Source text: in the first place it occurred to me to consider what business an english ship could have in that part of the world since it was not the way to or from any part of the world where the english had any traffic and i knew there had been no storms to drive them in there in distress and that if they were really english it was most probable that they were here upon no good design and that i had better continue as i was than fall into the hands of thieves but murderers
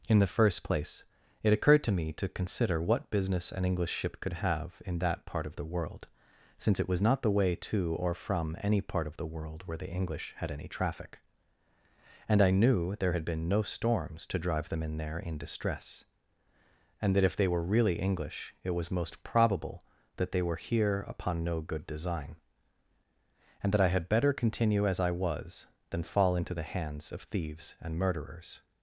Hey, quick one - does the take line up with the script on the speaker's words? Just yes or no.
no